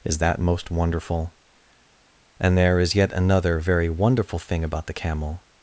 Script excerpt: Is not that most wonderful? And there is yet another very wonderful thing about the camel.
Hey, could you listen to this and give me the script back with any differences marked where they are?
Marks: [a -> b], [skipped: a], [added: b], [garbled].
Is [skipped: not] that most wonderful? And there is yet another very wonderful thing about the camel.